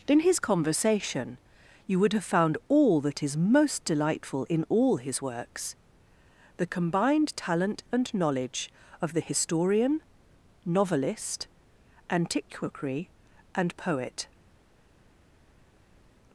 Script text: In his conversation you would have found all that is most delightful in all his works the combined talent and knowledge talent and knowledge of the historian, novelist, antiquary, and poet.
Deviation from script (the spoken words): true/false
true